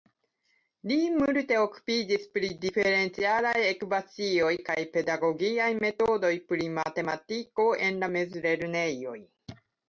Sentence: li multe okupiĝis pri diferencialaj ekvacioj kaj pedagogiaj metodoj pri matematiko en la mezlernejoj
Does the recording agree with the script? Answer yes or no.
yes